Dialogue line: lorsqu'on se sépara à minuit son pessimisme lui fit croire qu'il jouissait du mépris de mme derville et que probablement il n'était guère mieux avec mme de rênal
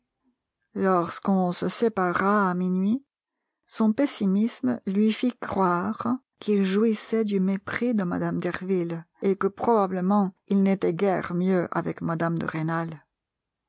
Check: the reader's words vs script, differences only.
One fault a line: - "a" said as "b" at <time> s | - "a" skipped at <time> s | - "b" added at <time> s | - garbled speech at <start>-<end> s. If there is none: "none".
none